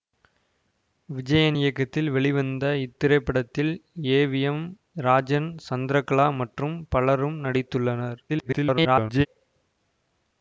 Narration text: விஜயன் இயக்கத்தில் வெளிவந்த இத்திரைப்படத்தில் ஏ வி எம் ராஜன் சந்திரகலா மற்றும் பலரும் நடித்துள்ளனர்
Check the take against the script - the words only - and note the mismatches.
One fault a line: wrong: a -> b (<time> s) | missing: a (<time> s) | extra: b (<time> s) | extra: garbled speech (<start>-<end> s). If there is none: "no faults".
extra: garbled speech (8.3-9.3 s)